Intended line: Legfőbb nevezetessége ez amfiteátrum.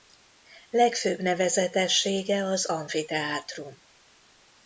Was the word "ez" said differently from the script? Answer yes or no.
yes